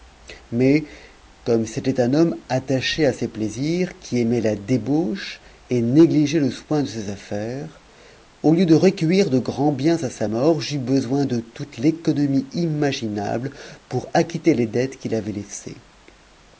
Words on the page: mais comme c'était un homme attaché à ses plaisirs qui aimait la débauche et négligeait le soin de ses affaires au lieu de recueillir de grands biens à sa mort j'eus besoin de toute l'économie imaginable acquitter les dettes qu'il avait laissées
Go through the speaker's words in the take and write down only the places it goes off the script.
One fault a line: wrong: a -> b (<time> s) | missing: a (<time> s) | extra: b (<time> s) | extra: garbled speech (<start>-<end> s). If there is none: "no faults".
extra: pour (13.9 s)